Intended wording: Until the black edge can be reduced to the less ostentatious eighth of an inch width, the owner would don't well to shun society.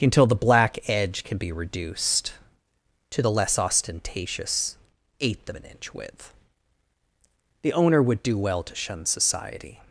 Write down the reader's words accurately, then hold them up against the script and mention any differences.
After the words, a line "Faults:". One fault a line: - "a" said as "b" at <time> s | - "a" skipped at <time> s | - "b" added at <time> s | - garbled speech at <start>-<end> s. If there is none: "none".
Until the black edge can be reduced to the less ostentatious eighth of an inch width, the owner would do well to shun society.
Faults:
- "don't" said as "do" at 8.2 s